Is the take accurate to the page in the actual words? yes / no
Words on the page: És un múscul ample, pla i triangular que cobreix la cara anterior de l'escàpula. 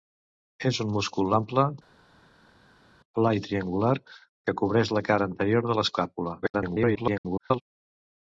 no